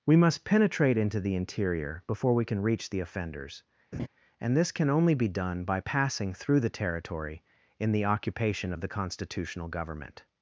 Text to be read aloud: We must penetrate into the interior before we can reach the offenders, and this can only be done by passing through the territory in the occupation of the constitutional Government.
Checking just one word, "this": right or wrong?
right